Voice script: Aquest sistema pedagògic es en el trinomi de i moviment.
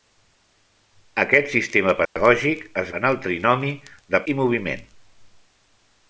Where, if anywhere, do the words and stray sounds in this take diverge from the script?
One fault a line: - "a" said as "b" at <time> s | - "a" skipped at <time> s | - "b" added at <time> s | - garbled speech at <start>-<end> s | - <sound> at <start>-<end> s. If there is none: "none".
- dropout at 2.1-2.2 s